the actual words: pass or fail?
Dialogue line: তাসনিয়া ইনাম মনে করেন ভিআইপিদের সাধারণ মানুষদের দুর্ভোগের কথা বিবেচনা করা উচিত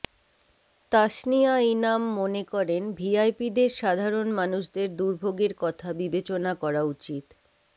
pass